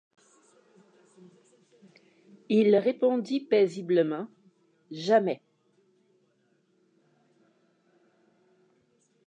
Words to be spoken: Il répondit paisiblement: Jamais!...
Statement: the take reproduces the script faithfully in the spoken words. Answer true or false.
true